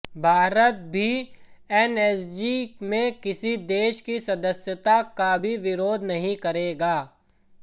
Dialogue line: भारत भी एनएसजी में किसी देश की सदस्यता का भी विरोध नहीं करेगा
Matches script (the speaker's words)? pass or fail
pass